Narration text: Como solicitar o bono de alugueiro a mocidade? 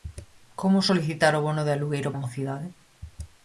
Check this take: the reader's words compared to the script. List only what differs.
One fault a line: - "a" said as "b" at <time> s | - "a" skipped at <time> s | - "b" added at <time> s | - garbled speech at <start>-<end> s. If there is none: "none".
none